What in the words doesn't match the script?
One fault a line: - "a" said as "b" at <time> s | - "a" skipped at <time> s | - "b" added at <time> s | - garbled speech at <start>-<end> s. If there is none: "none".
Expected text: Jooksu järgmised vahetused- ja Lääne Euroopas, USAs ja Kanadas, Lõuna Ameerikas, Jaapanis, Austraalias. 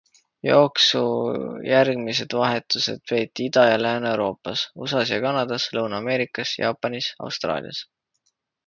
- "peeti Ida" added at 3.1 s